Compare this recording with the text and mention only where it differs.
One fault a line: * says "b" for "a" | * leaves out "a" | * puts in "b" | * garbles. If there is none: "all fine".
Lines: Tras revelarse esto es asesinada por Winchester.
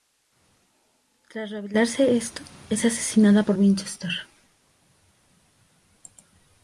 all fine